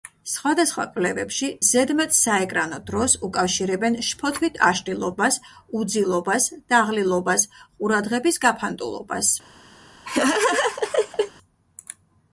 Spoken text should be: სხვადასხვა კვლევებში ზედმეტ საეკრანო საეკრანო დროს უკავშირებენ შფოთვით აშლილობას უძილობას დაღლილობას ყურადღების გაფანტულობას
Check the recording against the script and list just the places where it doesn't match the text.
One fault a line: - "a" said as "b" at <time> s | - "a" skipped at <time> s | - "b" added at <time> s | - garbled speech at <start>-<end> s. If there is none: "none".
- "საეკრანო" skipped at 2.8 s